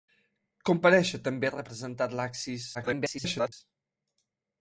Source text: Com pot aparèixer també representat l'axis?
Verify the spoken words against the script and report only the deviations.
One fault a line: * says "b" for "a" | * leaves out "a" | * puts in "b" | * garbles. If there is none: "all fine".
* leaves out "pot"
* garbles